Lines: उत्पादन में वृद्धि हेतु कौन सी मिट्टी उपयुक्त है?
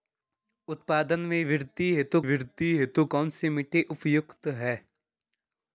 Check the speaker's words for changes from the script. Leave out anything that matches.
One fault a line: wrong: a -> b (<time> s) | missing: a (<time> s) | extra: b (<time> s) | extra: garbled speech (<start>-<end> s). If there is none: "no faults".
extra: वृद्धि हेतु (2.2 s)